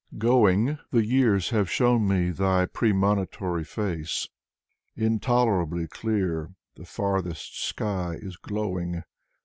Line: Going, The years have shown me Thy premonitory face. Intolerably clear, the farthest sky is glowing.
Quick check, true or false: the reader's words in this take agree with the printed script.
true